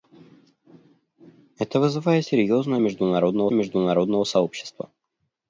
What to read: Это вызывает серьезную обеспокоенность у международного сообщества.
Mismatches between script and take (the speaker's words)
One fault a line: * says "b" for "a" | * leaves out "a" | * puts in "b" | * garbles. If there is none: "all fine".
* says "международного" for "обеспокоенность"